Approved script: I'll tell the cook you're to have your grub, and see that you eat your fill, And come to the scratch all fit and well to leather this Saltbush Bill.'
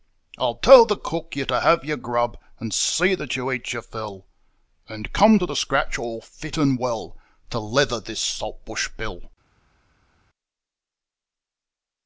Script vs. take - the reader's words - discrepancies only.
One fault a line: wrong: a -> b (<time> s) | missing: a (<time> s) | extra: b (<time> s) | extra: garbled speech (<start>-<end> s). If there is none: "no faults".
no faults